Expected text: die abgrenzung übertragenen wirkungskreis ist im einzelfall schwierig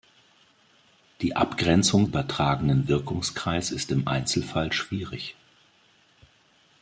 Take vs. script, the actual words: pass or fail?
pass